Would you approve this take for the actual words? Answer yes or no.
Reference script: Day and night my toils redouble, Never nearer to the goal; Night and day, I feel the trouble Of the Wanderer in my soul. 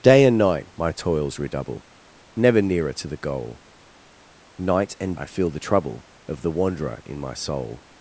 no